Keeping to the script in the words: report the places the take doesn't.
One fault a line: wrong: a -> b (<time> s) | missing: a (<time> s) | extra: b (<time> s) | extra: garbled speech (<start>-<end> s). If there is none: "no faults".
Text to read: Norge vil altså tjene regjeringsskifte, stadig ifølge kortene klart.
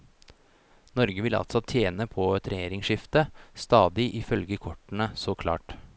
extra: på et (2.1 s)
extra: så (5.1 s)